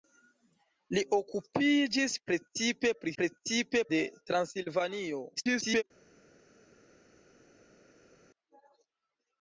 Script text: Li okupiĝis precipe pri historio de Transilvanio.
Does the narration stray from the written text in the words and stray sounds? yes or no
yes